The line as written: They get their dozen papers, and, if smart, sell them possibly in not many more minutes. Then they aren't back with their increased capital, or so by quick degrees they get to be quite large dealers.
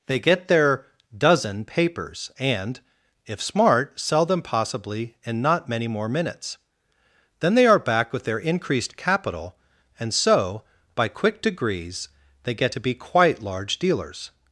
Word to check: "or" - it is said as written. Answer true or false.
false